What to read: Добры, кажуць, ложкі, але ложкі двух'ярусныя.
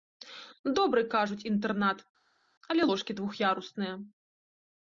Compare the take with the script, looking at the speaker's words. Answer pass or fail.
fail